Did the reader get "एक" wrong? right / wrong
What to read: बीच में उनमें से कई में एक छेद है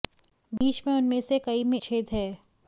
wrong